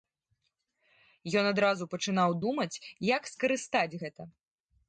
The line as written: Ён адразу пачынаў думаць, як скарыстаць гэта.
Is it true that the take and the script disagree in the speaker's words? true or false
false